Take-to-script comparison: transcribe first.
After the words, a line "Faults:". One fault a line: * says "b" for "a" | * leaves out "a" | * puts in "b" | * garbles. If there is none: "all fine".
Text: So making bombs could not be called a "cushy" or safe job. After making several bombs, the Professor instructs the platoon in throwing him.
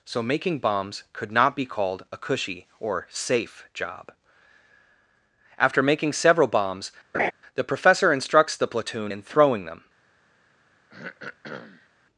So making bombs could not be called a "cushy" or safe job. After making several bombs, the Professor instructs the platoon in throwing them.
Faults:
* says "them" for "him"